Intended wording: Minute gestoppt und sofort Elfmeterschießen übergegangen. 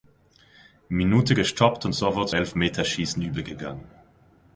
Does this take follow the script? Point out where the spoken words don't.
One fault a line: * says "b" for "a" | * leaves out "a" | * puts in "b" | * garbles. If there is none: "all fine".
all fine